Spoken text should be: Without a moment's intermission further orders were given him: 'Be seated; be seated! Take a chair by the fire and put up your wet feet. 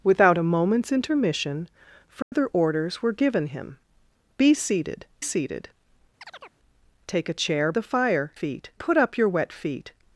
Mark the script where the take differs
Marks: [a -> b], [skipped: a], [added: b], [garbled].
Without a moment's intermission further orders were given him: 'Be seated; [skipped: be] seated! Take a chair [skipped: by] the fire [and -> feet] put up your wet feet.